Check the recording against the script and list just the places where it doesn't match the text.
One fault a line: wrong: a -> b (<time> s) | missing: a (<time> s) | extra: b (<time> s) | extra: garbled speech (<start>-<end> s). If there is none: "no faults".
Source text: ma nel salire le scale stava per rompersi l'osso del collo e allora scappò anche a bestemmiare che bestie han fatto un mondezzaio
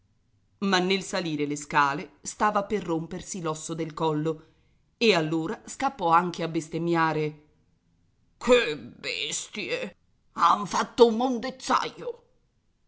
no faults